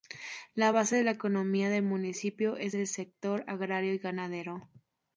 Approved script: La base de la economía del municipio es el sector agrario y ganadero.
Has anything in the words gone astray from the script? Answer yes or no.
no